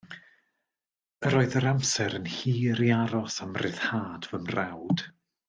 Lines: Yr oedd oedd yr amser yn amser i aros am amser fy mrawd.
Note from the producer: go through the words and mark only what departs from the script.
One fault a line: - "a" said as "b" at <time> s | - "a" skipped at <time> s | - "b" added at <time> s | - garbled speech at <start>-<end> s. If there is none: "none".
- "oedd" skipped at 1.6 s
- "amser" said as "hir" at 2.4 s
- "amser" said as "ryddhad" at 3.6 s